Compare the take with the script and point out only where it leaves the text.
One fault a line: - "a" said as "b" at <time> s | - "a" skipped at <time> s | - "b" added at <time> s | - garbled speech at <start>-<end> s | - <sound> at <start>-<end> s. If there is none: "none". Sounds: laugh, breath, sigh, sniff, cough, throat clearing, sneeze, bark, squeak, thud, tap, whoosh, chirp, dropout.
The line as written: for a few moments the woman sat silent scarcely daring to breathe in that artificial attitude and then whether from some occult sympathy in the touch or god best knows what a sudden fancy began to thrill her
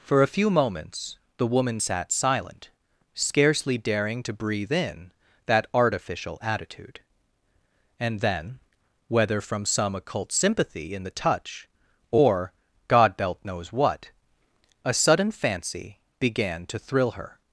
- "best" said as "belt" at 13.2 s